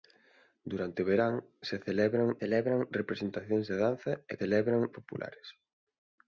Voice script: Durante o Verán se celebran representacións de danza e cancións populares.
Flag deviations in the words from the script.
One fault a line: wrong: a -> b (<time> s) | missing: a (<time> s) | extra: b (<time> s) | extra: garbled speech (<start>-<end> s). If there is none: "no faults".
extra: celebran (2.4 s)
wrong: cancións -> celebran (4.4 s)